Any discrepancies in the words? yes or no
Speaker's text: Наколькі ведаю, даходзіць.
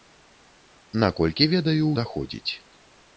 no